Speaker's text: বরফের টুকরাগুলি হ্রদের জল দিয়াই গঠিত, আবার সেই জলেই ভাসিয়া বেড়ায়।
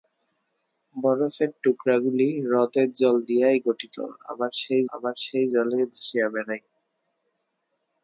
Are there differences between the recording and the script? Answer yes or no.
yes